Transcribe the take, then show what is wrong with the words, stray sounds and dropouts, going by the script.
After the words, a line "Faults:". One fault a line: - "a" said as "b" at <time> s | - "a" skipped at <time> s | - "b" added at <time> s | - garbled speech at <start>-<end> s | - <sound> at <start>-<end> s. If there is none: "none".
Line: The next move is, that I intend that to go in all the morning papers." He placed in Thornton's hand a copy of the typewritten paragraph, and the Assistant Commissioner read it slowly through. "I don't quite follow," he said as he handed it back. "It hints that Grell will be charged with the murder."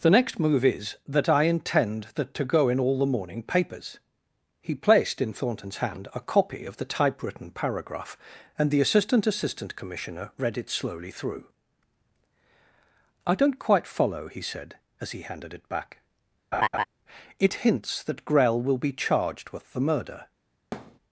The next move is, that I intend that to go in all the morning papers." He placed in Thornton's hand a copy of the typewritten paragraph, and the Assistant Assistant Commissioner read it slowly through. "I don't quite follow," he said as he handed it back. "It hints that Grell will be charged with the murder."
Faults:
- "Assistant" added at 9.3 s
- laugh at 16.5-16.9 s
- thud at 20.7-21.0 s